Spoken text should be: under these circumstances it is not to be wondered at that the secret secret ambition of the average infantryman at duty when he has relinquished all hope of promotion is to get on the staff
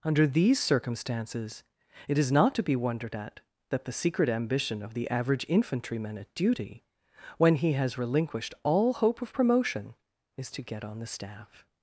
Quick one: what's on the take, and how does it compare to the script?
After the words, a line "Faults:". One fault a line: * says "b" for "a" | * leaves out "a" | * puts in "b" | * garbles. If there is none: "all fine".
under these circumstances it is not to be wondered at that the secret ambition of the average infantryman at duty when he has relinquished all hope of promotion is to get on the staff
Faults:
* leaves out "secret"